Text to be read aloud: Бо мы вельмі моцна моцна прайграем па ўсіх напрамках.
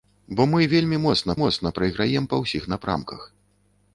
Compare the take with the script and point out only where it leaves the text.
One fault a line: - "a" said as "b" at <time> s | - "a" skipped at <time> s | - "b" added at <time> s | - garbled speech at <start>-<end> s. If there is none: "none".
none